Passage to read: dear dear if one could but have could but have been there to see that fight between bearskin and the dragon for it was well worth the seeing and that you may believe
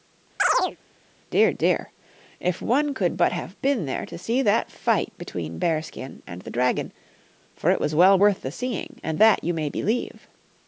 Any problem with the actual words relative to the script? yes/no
yes